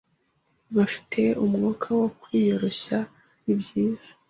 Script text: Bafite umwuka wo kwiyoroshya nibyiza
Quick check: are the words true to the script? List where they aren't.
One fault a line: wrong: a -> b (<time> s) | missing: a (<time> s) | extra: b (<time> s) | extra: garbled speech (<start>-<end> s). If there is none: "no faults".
no faults